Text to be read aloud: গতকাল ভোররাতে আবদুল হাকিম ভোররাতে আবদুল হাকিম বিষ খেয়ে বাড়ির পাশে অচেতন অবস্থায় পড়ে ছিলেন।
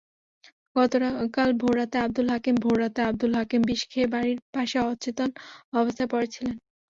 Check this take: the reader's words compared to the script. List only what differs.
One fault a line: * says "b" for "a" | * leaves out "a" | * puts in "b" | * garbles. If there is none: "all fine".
all fine